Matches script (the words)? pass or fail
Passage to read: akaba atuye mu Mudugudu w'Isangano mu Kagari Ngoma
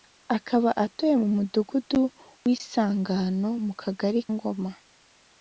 pass